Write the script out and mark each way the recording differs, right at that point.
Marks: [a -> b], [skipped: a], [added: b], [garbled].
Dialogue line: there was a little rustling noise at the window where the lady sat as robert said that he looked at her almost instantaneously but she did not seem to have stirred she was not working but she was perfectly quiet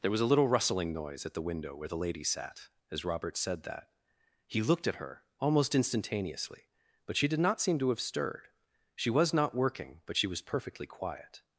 there was a little rustling noise at the window where the lady sat as robert said that he looked at her almost instantaneously but she did not seem to have stirred she was not working but she was perfectly quiet